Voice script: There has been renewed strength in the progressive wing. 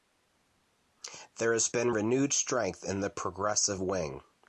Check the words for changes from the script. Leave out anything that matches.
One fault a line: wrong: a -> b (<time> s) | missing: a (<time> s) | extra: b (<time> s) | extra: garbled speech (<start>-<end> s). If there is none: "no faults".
no faults